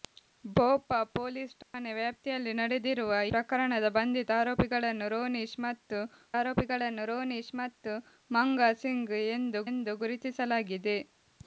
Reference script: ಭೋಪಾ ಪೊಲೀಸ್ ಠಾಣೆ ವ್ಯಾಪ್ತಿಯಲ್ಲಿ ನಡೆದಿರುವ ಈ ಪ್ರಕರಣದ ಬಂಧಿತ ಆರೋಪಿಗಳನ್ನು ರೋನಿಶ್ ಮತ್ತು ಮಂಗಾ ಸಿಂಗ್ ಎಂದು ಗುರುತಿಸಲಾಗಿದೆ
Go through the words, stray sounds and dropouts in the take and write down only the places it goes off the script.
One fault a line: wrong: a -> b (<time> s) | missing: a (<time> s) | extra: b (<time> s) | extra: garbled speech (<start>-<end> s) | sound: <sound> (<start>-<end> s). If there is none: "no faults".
sound: dropout (1.6-1.7 s)
missing: ಈ (3.1 s)
extra: ಆರೋಪಿಗಳನ್ನು ರೋನಿಶ್ ಮತ್ತು (6.4 s)
extra: ಎಂದು (9.7 s)